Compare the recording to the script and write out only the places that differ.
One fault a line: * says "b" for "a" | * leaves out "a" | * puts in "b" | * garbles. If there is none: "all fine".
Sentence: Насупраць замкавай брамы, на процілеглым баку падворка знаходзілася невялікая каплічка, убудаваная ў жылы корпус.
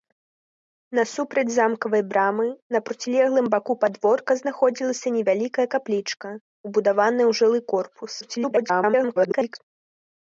* garbles